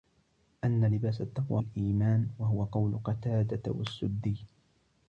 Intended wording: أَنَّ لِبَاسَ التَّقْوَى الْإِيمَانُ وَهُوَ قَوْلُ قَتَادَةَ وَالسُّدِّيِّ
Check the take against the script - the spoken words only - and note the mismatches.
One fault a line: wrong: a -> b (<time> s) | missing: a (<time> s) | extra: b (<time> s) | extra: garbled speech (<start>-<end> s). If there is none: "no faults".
no faults